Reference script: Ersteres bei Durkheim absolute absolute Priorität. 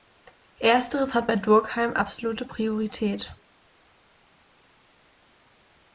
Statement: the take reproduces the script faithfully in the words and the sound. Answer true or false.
false